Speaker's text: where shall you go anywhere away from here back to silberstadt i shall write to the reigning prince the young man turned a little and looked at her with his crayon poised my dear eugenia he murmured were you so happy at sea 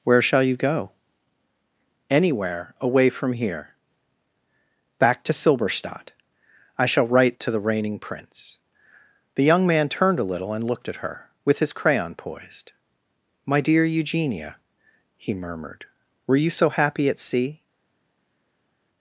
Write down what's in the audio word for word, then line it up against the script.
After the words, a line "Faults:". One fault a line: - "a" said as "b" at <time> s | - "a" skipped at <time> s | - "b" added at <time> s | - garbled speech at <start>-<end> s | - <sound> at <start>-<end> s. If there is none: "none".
where shall you go anywhere away from here back to silberstadt i shall write to the reigning prince the young man turned a little and looked at her with his crayon poised my dear eugenia he murmured were you so happy at sea
Faults:
none